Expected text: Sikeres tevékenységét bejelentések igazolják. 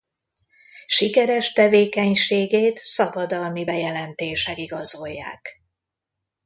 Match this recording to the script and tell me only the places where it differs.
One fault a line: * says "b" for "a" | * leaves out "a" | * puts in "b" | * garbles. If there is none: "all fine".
* puts in "szabadalmi"